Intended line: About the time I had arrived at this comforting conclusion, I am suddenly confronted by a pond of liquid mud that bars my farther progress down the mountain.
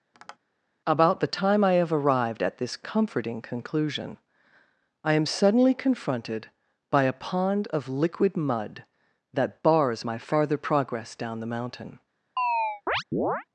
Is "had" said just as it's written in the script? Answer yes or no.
no